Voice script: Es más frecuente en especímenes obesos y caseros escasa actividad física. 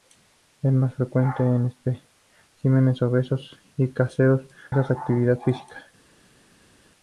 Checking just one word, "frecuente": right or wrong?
right